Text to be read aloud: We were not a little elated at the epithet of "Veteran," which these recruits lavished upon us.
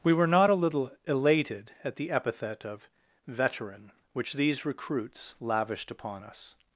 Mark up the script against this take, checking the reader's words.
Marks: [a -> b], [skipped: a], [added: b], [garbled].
We were not a little elated at the epithet of "Veteran," which these recruits lavished upon us.